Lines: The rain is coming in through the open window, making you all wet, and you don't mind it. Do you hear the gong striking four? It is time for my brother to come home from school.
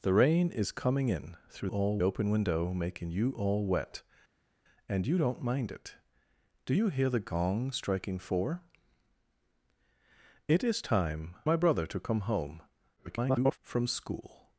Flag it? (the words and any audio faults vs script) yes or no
yes